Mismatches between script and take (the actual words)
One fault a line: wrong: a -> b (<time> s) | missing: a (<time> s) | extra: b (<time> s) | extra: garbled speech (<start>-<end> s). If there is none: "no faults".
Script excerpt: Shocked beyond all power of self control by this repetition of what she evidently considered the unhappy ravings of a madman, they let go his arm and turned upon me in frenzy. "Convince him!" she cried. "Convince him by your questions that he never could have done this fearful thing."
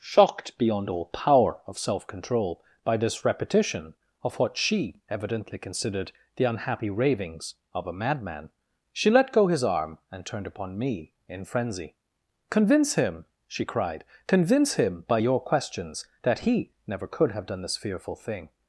wrong: they -> she (8.9 s)